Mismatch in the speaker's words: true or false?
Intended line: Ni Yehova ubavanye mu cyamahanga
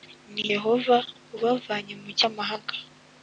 false